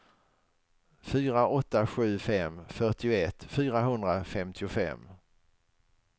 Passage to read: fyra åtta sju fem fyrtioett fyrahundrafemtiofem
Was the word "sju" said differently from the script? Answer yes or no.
no